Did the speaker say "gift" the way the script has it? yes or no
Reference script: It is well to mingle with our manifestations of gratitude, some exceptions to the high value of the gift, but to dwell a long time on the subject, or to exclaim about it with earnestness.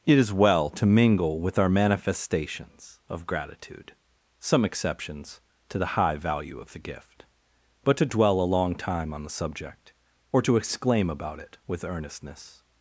yes